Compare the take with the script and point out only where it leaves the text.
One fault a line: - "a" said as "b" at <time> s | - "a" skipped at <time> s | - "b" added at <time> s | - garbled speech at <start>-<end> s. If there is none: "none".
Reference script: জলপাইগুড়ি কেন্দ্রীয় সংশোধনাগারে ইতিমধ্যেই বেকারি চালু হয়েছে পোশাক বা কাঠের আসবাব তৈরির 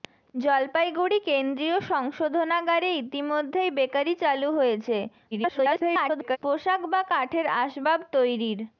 - garbled speech at 5.3-6.4 s